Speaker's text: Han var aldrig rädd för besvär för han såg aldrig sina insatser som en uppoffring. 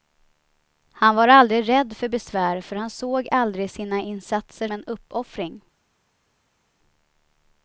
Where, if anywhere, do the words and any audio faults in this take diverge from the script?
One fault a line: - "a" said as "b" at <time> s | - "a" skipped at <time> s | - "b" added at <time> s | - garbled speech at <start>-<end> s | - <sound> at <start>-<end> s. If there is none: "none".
- "som" skipped at 4.7 s